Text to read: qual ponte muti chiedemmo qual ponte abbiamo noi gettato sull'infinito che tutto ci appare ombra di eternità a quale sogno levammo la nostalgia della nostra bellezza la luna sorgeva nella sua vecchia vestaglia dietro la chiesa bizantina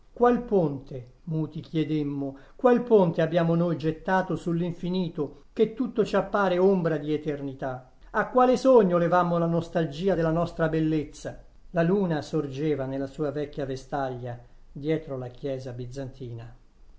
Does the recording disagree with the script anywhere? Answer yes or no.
no